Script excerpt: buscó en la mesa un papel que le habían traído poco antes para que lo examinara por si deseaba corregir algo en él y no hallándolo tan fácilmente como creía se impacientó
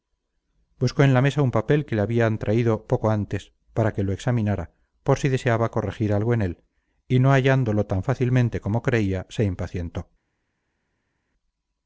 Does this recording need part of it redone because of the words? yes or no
no